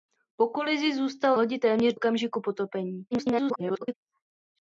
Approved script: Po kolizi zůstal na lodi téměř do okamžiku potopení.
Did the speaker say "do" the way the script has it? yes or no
no